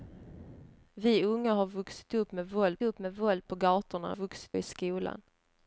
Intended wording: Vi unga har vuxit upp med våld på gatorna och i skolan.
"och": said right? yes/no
no